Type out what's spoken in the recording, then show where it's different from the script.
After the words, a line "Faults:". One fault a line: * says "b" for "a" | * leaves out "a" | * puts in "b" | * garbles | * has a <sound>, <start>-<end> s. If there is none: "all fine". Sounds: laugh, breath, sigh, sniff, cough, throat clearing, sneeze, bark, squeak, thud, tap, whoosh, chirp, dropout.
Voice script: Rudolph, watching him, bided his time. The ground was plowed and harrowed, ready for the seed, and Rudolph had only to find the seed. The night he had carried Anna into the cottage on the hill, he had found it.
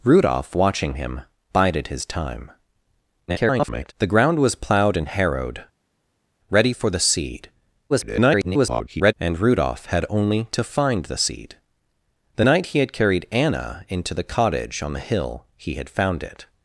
Rudolph, watching him, bided his time. [garbled] The ground was plowed and harrowed, ready for the seed, [garbled] and Rudolph had only to find the seed. The night he had carried Anna into the cottage on the hill, he had found it.
Faults:
* garbles
* garbles